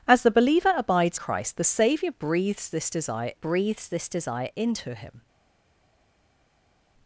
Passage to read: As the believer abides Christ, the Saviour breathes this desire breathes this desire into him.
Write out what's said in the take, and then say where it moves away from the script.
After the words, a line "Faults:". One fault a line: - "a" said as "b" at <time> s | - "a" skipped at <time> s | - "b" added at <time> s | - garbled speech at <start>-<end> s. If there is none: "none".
As the believer abides Christ, the Saviour breathes this desire breathes this desire into him.
Faults:
none